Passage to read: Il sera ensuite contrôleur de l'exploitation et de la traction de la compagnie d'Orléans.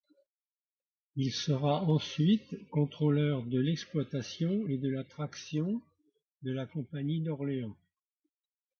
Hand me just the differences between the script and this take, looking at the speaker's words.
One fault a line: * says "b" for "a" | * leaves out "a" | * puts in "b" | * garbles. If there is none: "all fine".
all fine